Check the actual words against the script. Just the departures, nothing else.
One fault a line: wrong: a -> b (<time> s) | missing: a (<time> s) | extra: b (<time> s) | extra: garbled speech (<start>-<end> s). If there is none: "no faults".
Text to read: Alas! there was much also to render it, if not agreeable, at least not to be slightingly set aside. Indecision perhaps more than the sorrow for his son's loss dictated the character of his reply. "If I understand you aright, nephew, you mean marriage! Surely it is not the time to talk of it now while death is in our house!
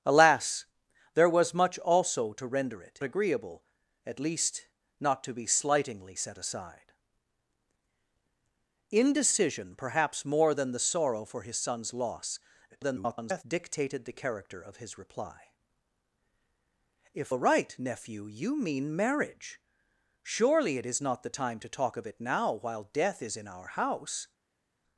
missing: if not (3.0 s)
extra: garbled speech (12.7-13.4 s)
missing: I understand you (17.3 s)